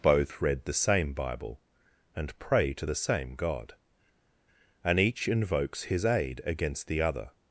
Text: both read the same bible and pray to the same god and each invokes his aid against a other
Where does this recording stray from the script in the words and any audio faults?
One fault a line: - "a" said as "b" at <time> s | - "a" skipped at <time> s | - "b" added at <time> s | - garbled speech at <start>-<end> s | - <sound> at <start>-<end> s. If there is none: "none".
- "a" said as "the" at 6.9 s